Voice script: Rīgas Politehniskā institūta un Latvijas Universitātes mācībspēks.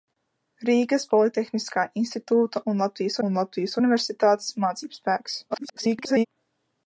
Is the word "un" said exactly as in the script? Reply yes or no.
yes